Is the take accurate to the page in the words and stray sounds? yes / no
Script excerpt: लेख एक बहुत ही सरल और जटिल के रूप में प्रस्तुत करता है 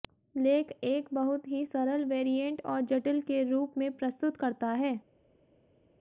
no